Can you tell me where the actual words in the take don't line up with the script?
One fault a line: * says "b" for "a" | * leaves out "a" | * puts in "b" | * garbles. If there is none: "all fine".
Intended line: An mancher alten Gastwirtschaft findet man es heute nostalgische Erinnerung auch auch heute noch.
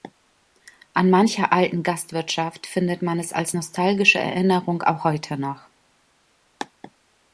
* says "als" for "heute"
* leaves out "auch"